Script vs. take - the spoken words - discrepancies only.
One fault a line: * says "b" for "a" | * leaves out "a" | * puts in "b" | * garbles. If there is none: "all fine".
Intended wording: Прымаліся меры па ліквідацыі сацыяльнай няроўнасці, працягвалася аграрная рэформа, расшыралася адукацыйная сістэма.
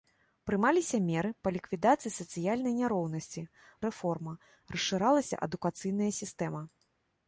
* leaves out "працягвалася аграрная"